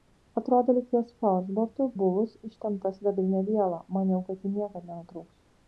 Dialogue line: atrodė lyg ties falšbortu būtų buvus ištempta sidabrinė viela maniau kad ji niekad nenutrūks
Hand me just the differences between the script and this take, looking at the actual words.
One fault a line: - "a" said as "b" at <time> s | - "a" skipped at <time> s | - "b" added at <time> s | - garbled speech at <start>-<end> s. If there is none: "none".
- "būtų" skipped at 1.9 s